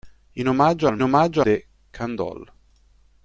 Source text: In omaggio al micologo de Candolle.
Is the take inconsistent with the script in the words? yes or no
yes